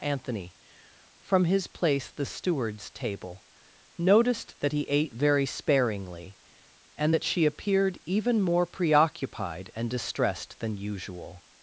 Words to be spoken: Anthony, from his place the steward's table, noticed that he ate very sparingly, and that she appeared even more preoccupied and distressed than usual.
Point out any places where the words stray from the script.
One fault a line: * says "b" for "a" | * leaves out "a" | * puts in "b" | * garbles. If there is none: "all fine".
all fine